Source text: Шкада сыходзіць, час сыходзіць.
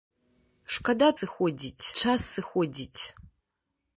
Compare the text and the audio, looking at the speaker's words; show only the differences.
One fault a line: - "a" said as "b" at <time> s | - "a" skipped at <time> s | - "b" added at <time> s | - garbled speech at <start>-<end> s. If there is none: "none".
none